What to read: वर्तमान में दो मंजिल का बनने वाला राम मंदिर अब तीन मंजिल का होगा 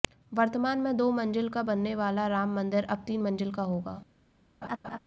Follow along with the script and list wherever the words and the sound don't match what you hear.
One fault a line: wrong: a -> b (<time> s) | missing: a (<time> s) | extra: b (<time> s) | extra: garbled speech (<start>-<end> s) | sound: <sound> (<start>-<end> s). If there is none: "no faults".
sound: laugh (4.6-5.0 s)